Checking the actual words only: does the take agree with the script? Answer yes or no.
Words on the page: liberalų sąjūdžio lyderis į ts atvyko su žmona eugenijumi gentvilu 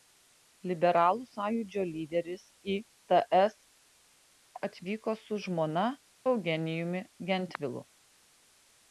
yes